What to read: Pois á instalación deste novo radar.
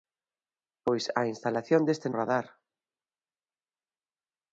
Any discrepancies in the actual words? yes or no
yes